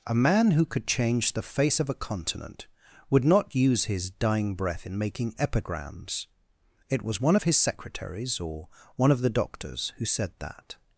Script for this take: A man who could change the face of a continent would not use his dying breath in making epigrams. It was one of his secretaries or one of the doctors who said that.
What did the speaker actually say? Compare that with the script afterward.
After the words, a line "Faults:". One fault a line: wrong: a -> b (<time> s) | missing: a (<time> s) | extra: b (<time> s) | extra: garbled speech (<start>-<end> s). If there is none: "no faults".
A man who could change the face of a continent would not use his dying breath in making epigrams. It was one of his secretaries or one of the doctors who said that.
Faults:
no faults